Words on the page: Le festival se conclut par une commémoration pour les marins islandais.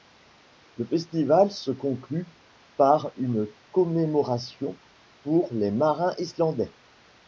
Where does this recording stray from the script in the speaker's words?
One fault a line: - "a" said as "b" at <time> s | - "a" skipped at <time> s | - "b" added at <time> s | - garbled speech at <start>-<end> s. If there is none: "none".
none